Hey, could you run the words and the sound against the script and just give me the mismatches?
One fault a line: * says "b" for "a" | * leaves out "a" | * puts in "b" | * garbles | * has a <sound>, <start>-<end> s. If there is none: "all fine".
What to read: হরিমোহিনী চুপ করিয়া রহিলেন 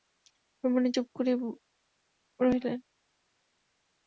all fine